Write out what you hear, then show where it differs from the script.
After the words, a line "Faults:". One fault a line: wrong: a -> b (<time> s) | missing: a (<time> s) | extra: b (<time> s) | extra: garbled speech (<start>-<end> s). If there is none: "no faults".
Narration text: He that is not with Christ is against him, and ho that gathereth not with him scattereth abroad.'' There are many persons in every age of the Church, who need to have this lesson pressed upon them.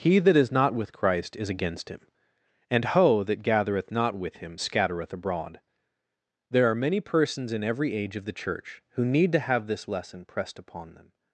He that is not with Christ is against him, and ho that gathereth not with him scattereth abroad.'' There are many persons in every age of the Church, who need to have this lesson pressed upon them.
Faults:
no faults